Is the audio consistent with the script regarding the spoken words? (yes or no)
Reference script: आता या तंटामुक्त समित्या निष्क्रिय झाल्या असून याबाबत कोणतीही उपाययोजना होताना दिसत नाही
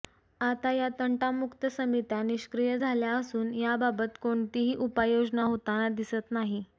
yes